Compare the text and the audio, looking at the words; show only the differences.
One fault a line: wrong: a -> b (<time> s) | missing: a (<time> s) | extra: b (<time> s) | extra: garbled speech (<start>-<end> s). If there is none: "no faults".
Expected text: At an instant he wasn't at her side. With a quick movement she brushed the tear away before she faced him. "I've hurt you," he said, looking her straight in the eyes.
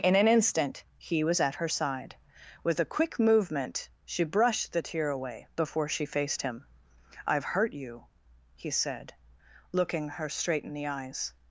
wrong: At -> In (0.0 s)
wrong: wasn't -> was (1.2 s)